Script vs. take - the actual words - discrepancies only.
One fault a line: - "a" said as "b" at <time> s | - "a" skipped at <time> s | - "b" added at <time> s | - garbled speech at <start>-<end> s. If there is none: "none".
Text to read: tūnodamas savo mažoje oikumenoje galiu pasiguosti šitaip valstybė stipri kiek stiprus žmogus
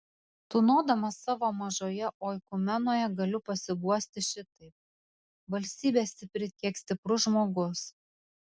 none